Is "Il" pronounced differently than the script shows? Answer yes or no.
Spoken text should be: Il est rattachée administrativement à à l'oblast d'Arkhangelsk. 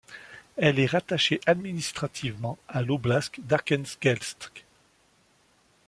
yes